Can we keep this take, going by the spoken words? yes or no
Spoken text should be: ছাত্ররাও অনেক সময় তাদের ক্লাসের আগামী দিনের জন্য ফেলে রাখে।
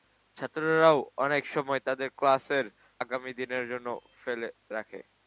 yes